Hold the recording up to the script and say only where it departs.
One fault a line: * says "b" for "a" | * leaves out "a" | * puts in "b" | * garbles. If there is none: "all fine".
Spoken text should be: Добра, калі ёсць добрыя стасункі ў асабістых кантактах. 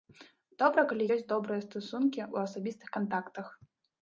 all fine